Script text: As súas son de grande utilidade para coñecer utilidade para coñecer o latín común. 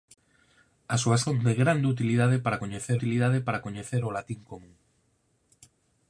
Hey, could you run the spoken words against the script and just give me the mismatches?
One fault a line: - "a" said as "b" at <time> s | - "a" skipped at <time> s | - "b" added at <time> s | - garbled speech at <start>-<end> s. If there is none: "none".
none